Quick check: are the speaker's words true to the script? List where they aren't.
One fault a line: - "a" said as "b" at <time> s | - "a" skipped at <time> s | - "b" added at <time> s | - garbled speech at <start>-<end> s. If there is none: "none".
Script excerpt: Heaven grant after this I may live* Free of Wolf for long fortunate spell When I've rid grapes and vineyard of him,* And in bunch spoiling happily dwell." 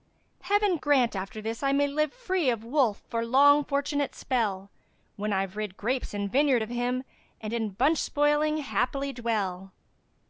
none